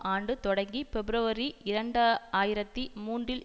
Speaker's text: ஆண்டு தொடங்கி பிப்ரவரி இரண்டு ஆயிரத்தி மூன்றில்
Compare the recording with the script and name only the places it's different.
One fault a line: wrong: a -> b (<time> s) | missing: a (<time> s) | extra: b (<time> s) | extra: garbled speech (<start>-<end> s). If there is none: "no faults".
no faults